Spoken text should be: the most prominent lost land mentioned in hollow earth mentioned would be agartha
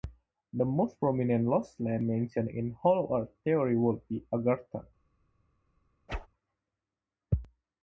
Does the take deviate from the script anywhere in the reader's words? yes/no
yes